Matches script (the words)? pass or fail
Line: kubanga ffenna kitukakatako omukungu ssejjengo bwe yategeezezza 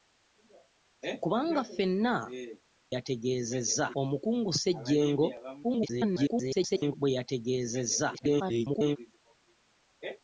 fail